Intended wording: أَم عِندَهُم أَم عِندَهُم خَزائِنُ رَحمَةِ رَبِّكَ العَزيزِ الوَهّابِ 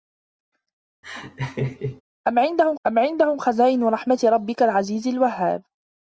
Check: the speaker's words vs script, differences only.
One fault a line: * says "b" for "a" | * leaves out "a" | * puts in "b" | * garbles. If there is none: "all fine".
all fine